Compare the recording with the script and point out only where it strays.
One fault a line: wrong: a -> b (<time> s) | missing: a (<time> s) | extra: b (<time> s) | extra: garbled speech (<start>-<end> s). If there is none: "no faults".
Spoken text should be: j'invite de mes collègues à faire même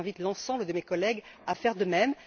extra: l'ensemble (0.2 s)
extra: de (1.8 s)